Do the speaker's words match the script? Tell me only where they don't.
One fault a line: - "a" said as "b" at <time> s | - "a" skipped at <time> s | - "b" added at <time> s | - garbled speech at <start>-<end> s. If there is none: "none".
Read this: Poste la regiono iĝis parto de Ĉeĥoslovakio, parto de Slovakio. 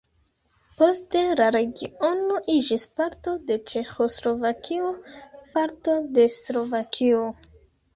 none